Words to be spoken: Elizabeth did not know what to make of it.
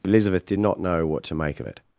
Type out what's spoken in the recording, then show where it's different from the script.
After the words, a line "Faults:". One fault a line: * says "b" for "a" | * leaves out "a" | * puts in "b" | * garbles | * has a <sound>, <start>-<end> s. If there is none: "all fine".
Elizabeth did not know what to make of it.
Faults:
all fine